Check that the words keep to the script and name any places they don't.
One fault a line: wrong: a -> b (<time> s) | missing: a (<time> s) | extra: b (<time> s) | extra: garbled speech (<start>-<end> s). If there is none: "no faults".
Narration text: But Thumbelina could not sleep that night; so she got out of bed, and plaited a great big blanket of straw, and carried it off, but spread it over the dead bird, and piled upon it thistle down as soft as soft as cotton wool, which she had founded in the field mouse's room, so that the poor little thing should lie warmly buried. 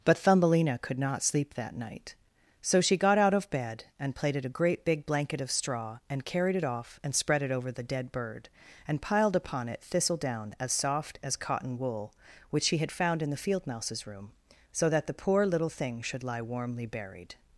wrong: but -> and (7.0 s)
missing: soft as (11.3 s)
wrong: founded -> found (12.9 s)